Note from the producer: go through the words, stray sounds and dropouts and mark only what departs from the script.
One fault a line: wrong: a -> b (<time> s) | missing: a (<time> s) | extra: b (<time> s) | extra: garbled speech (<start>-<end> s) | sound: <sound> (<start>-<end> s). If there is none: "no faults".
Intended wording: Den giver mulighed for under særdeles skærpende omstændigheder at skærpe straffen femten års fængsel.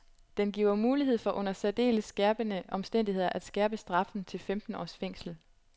extra: til (4.2 s)